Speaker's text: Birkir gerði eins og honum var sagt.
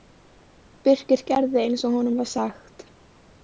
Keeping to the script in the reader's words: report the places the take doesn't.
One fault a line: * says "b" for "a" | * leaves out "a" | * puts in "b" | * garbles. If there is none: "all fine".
all fine